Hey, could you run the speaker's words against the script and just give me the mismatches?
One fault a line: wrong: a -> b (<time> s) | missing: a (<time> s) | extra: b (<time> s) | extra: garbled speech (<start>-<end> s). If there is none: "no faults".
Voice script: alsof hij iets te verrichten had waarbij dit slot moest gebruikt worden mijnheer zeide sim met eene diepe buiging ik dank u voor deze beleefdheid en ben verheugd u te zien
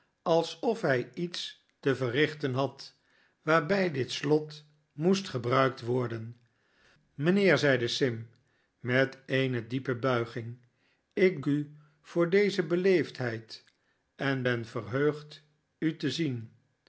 missing: dank (11.4 s)